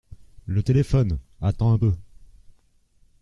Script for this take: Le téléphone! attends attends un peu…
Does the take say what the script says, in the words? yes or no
no